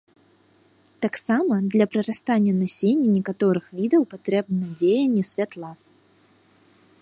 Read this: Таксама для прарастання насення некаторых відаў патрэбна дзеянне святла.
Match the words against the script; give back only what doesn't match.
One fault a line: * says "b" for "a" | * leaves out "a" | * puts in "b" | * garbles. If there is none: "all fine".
all fine